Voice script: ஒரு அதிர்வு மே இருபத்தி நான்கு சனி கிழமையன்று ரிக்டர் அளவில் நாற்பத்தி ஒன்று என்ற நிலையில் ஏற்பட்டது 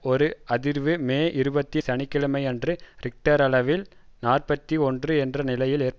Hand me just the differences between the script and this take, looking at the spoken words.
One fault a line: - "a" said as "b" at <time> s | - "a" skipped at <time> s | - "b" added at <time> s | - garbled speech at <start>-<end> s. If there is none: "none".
- "நான்கு" skipped at 1.8 s